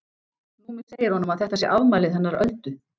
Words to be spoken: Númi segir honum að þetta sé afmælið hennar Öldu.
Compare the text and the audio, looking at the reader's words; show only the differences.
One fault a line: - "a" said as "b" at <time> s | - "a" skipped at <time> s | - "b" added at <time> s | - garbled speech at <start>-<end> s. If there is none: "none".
none